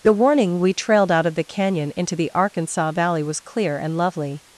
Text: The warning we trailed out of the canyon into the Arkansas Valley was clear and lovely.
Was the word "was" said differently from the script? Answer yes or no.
no